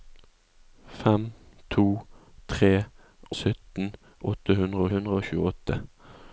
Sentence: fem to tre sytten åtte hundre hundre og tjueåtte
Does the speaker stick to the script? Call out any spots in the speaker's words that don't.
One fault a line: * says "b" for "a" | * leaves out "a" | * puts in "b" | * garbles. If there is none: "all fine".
all fine